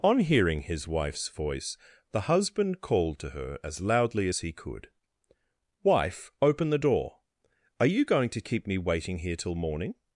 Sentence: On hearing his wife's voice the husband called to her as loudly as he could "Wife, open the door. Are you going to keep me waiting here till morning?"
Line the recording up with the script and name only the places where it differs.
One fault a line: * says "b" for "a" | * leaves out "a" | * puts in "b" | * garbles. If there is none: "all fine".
all fine